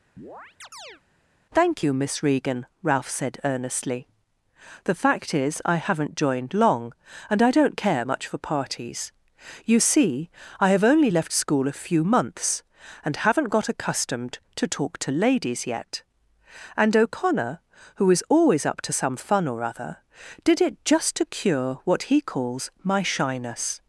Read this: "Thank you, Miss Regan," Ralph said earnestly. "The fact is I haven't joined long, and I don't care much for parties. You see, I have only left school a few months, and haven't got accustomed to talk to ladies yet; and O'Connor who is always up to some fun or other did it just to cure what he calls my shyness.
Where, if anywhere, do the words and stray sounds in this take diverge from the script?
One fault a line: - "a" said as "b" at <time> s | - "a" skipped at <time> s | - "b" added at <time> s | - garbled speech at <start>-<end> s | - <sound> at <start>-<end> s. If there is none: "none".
- chirp at 0.2-1.0 s